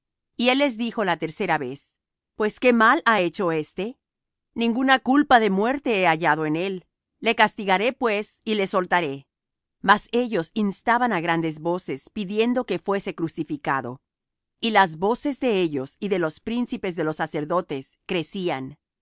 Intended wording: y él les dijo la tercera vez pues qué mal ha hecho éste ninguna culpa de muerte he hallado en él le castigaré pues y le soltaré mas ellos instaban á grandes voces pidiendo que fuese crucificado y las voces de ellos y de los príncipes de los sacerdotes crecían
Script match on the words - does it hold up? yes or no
yes